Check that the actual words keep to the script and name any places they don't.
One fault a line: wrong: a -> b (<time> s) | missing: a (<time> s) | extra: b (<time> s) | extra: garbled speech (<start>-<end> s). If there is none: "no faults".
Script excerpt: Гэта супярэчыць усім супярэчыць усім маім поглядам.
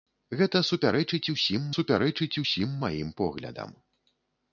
no faults